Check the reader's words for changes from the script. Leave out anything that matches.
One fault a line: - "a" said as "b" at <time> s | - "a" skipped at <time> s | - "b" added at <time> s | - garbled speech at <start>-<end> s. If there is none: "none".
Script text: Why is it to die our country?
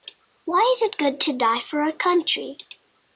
- "good" added at 1.0 s
- "for" added at 1.6 s